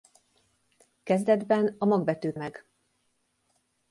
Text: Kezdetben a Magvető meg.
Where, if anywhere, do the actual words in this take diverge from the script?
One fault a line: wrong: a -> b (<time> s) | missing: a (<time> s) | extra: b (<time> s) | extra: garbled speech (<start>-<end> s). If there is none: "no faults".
no faults